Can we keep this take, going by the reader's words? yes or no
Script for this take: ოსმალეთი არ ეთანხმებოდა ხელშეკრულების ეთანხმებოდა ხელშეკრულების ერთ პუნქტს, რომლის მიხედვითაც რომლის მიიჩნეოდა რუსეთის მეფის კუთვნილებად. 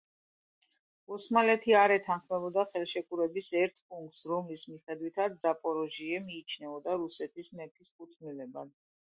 no